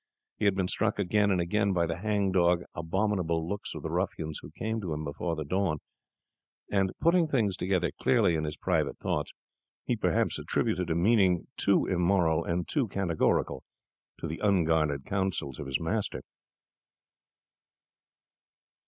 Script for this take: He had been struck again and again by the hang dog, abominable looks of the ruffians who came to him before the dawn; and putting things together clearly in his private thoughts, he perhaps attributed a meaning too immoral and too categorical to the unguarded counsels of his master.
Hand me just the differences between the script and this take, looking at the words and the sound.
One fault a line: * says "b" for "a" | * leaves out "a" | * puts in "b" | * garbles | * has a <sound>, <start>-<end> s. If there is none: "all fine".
all fine